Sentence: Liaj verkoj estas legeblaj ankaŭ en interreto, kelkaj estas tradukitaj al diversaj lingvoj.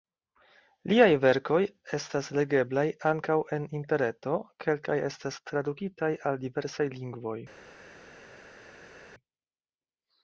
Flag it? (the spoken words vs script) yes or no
no